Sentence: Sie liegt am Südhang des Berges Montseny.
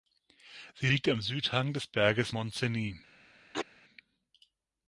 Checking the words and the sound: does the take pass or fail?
fail